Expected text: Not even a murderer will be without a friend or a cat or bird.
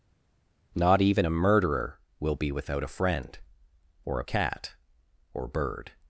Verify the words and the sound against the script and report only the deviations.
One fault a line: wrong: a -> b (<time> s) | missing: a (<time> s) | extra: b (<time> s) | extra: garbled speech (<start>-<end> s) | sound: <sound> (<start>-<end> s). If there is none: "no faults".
no faults